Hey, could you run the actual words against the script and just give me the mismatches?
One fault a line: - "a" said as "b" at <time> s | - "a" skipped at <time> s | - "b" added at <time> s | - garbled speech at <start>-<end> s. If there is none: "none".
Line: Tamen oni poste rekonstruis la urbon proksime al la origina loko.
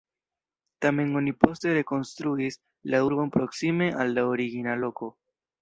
none